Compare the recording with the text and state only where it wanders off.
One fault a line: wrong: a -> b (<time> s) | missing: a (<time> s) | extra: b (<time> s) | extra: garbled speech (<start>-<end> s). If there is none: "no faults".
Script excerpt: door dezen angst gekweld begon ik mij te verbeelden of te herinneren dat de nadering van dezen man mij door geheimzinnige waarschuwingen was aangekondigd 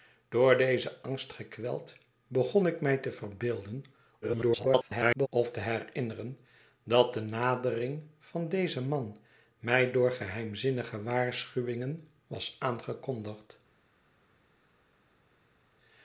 extra: garbled speech (4.2-5.3 s)